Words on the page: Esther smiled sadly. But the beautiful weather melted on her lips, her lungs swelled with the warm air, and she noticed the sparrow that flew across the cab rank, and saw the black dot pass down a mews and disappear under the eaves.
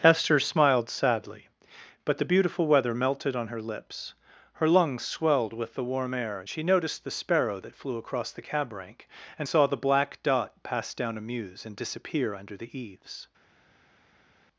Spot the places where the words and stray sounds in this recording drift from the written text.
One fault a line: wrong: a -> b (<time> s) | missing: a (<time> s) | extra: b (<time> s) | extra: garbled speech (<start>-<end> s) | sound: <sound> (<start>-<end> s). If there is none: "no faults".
no faults